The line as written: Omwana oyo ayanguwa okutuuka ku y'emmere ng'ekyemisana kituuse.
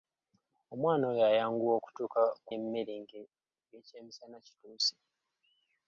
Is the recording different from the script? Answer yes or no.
no